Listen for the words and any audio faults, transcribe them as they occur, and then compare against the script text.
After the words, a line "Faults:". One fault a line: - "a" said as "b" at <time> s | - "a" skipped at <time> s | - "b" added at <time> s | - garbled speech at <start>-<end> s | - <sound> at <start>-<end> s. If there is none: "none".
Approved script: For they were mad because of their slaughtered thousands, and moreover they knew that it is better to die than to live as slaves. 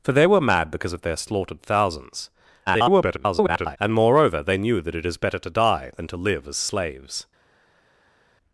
For they were mad because of their slaughtered thousands, [garbled] and moreover they knew that it is better to die than to live as slaves.
Faults:
- garbled speech at 2.7-3.8 s